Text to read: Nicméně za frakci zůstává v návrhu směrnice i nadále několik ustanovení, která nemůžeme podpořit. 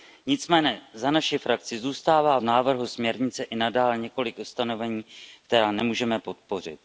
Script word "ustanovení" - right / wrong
right